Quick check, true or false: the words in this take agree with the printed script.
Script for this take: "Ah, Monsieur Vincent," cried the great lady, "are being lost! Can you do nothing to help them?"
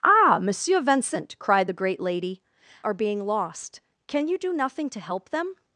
true